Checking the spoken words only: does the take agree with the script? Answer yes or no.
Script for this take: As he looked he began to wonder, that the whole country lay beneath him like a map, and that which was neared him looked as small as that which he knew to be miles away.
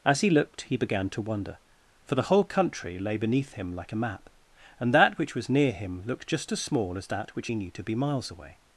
no